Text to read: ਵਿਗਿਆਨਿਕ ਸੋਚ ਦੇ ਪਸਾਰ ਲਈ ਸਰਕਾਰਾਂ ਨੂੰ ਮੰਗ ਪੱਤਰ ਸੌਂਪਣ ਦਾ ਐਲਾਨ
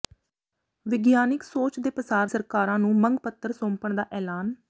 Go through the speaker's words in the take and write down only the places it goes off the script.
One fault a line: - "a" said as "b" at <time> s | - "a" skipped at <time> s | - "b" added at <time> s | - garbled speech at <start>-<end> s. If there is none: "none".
- "ਲਈ" skipped at 2.3 s